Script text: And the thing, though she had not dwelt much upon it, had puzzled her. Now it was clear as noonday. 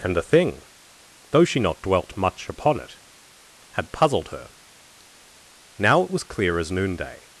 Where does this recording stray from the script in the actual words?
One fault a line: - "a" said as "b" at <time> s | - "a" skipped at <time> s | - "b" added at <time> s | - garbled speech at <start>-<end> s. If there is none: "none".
- "had" skipped at 1.6 s